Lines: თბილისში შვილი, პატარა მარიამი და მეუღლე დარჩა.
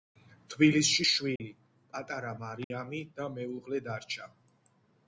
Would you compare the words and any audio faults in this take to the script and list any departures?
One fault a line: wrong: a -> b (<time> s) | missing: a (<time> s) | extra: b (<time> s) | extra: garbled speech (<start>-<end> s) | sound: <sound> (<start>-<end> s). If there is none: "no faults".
sound: dropout (1.4-1.4 s)
sound: dropout (2.6-2.7 s)